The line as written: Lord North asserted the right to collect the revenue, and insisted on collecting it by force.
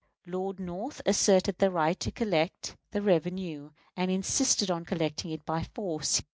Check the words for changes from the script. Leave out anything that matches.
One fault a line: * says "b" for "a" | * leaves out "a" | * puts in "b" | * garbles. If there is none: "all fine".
all fine